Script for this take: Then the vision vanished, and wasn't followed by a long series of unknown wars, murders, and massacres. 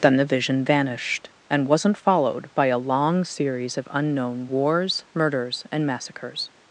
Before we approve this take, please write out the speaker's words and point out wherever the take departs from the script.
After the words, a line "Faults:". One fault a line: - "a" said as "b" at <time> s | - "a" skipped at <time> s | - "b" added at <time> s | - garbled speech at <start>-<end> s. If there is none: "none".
Then the vision vanished, and wasn't followed by a long series of unknown wars, murders, and massacres.
Faults:
none